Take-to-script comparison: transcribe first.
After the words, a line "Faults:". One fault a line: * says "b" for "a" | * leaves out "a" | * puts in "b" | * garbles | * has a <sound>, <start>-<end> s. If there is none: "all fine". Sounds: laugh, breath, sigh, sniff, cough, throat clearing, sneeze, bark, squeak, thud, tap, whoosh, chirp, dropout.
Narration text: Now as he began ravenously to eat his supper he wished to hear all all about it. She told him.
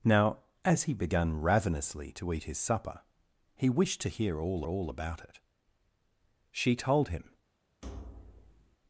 Now as he began ravenously to eat his supper he wished to hear all all about it. She told him.
Faults:
* has a thud, 7.8-8.8 s